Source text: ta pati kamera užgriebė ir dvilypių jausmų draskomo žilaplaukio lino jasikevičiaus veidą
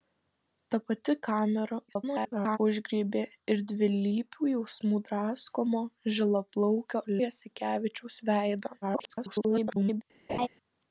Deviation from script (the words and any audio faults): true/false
true